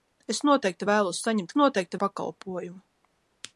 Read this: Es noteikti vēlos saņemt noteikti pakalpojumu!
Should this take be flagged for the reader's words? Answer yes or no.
no